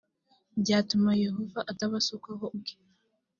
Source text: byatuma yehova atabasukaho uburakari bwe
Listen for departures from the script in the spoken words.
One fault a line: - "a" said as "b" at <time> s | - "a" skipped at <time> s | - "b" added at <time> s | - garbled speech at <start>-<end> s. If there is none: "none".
- "uburakari" skipped at 2.5 s